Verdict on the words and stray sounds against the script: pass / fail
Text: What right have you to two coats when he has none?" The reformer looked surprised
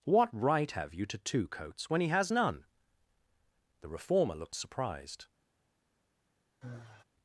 fail